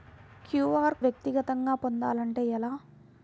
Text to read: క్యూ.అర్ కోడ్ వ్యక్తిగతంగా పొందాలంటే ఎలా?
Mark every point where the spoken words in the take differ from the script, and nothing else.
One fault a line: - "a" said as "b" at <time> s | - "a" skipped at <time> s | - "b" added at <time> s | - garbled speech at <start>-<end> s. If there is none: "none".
- "కోడ్" skipped at 1.0 s